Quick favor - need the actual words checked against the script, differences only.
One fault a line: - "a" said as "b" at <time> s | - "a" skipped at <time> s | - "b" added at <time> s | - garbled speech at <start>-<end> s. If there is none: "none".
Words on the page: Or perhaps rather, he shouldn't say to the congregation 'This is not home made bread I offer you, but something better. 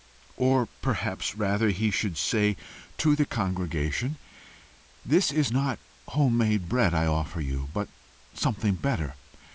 - "shouldn't" said as "should" at 1.9 s